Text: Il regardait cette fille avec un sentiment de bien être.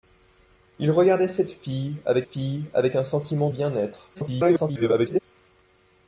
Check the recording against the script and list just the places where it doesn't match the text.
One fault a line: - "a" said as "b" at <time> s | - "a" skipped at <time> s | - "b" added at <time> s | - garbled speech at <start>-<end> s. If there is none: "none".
- "fille avec" added at 2.2 s
- "de" skipped at 3.5 s
- garbled speech at 4.1-5.2 s